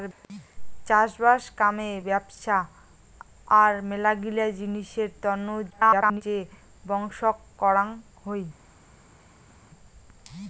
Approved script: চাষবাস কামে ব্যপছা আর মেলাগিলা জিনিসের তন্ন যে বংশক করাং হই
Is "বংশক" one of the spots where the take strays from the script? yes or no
no